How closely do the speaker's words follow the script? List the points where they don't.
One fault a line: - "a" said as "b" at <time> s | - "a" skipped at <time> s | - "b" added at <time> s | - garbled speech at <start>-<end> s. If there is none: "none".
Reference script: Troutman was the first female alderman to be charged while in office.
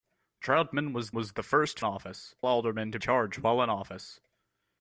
- "was" added at 1.2 s
- "female" said as "office" at 1.8 s
- "be" skipped at 3.0 s